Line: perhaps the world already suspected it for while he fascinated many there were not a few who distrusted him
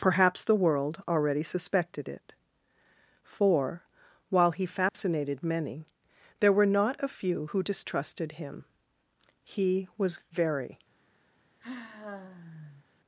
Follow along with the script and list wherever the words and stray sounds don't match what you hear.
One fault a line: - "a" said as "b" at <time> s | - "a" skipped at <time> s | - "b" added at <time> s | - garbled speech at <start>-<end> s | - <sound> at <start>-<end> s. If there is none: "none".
- dropout at 4.9-4.9 s
- "he was very" added at 9.4 s
- sigh at 11.6-12.9 s